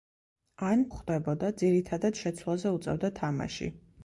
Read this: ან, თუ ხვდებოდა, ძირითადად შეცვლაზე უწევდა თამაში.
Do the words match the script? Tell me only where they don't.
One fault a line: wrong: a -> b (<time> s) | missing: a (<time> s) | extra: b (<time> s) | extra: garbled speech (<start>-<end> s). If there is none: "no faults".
missing: თუ (0.8 s)